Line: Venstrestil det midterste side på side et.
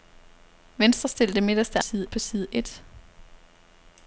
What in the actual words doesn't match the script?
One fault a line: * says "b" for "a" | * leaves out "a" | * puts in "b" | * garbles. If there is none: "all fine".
all fine